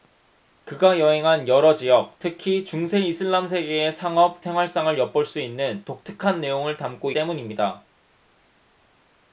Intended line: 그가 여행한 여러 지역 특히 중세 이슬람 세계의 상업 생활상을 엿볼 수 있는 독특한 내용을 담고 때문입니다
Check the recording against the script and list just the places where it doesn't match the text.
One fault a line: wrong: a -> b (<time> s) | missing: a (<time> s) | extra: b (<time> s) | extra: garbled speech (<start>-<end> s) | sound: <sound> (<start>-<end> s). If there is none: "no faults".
no faults